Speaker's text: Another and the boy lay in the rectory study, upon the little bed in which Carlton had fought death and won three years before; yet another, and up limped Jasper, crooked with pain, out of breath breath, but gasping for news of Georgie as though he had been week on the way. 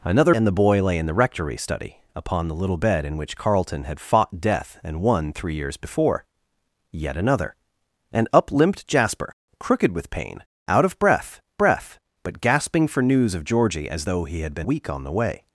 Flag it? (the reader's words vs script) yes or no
no